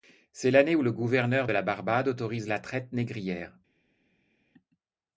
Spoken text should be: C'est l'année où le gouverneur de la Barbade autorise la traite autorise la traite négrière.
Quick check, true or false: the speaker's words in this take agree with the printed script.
false